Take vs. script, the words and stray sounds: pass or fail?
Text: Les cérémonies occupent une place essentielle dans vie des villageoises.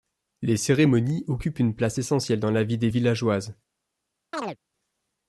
fail